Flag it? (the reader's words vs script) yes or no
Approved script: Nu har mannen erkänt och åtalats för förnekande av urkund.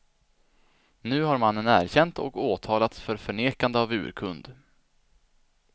no